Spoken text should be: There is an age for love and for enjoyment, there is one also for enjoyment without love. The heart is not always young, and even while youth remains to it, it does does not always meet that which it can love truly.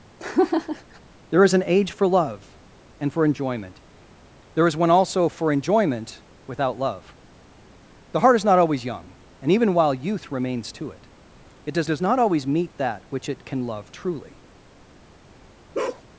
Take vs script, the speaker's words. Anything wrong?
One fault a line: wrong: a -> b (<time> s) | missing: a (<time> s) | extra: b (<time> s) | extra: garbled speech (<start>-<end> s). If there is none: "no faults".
no faults